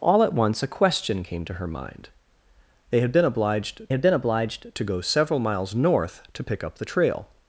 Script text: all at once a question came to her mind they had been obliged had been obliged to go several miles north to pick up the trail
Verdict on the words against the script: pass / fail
pass